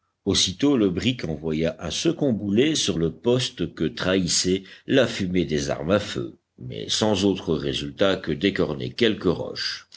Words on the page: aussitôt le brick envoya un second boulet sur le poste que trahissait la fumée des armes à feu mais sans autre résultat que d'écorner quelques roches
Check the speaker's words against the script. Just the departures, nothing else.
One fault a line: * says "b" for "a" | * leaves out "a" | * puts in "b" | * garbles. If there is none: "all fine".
all fine